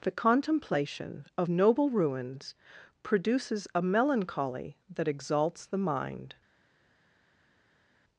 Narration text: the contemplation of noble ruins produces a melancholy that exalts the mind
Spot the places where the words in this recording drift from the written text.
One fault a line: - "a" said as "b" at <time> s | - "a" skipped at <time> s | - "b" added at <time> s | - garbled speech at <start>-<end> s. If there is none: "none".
none